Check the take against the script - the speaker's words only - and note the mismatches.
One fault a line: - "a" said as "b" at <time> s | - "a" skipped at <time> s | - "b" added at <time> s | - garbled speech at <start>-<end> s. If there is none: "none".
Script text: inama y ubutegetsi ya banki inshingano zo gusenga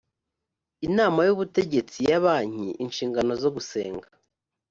none